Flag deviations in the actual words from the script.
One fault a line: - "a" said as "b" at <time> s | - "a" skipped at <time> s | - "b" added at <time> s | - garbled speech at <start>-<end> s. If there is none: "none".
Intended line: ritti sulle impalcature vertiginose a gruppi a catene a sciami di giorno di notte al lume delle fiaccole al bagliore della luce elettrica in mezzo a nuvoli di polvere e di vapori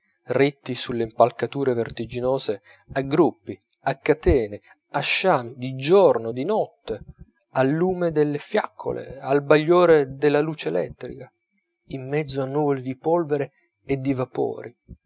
none